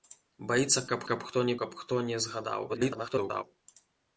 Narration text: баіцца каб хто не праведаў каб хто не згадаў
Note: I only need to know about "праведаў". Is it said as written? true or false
false